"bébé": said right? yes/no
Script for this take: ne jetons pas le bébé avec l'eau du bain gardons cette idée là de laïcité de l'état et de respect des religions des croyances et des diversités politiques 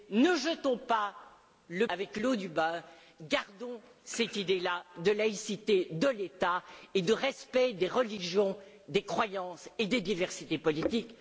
no